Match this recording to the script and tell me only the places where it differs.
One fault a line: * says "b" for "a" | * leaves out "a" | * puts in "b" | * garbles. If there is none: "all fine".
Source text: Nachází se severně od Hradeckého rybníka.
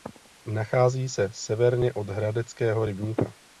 all fine